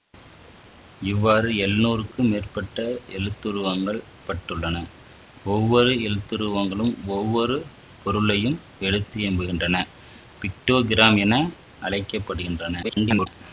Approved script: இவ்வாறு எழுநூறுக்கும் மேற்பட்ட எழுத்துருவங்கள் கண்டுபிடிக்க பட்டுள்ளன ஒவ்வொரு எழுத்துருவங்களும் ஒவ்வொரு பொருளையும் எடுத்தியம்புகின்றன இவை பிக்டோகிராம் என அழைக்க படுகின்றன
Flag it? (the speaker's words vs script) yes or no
yes